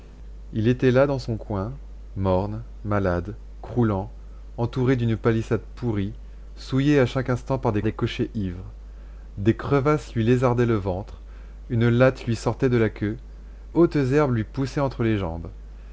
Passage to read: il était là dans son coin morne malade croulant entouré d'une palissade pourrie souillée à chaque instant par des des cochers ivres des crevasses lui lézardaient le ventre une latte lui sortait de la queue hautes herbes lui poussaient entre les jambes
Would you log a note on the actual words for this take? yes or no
no